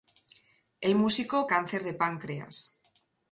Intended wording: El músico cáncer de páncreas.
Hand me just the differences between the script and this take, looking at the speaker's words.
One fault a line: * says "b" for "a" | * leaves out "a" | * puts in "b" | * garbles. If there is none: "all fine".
all fine